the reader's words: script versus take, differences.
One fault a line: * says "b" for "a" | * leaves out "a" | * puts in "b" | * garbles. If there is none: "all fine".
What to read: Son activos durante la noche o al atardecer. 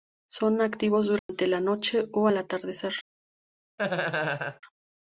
all fine